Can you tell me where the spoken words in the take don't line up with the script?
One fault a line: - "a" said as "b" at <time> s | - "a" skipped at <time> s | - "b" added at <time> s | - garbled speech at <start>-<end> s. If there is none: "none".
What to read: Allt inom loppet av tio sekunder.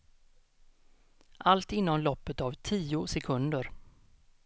none